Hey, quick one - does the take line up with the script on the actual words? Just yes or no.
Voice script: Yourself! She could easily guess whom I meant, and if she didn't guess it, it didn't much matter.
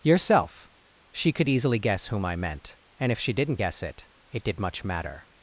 no